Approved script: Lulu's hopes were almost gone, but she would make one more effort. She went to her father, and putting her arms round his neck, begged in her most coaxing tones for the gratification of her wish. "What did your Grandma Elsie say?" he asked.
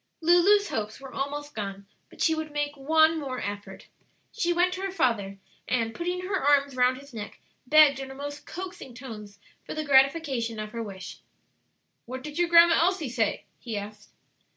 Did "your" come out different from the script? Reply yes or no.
no